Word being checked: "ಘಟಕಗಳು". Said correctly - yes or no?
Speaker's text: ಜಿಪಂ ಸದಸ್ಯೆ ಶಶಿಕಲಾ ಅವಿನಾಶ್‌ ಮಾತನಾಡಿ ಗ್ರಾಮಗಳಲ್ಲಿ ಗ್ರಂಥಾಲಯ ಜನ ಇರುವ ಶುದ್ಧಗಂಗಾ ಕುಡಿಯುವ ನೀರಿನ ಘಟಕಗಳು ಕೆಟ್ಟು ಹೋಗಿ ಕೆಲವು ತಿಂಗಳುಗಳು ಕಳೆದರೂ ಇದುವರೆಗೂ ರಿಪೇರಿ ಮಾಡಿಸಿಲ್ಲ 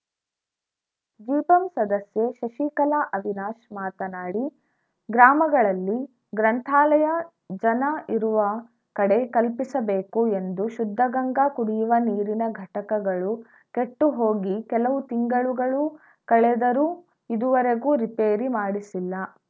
yes